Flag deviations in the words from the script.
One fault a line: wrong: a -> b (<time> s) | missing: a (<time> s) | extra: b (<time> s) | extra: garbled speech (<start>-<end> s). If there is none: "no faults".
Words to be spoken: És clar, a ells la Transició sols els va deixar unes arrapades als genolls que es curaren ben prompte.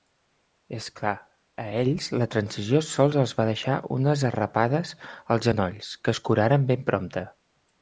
no faults